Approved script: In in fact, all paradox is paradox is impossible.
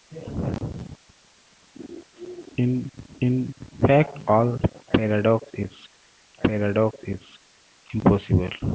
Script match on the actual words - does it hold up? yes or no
yes